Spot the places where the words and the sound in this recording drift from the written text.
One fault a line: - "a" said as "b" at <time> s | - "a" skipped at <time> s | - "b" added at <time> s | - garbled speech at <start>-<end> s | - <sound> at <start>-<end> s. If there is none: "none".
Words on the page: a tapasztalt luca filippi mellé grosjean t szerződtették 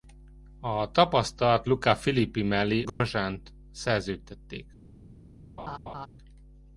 - dropout at 2.9-3.0 s
- laugh at 5.6-6.1 s